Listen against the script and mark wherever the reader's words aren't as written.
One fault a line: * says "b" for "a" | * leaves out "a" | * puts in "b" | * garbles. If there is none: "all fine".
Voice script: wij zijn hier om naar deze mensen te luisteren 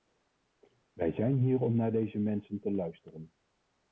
all fine